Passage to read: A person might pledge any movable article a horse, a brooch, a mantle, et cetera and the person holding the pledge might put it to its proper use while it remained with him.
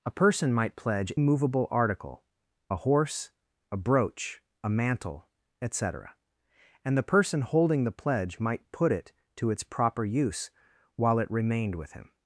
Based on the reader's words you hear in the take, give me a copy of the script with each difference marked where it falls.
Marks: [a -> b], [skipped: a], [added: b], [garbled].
A person might pledge [skipped: any] movable article a horse, a brooch, a mantle, et cetera and the person holding the pledge might put it to its proper use while it remained with him.